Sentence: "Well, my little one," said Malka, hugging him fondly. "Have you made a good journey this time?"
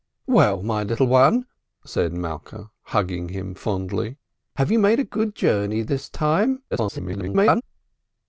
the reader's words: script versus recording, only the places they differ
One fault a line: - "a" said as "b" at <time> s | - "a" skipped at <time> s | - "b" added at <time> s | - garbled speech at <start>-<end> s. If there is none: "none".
- garbled speech at 6.7-7.6 s